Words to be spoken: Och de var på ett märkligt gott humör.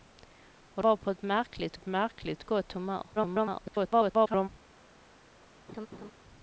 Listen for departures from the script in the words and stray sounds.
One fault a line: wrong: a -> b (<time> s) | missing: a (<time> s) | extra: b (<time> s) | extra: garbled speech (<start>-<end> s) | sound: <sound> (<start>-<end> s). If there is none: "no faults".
missing: de (0.8 s)
extra: ett märkligt (1.7 s)
extra: garbled speech (3.2-4.5 s)
sound: laugh (5.7-6.1 s)